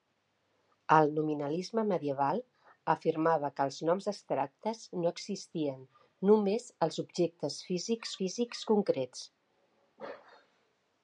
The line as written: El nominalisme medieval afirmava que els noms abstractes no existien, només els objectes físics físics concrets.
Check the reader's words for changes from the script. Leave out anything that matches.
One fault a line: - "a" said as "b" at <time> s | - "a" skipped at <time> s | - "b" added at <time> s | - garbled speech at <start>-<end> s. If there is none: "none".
none